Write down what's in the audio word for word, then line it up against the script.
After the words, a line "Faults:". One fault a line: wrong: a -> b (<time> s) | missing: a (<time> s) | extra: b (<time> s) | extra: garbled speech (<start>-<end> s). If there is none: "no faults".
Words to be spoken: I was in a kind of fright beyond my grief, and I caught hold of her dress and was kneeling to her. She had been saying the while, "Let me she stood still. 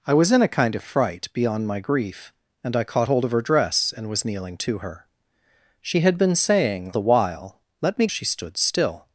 I was in a kind of fright beyond my grief, and I caught hold of her dress and was kneeling to her. She had been saying the while, "Let me she stood still.
Faults:
no faults